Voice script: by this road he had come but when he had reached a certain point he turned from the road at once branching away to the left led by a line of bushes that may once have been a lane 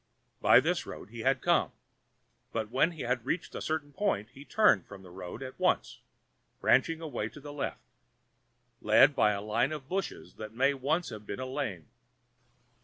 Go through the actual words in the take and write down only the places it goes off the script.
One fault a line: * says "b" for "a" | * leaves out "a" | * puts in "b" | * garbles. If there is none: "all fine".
all fine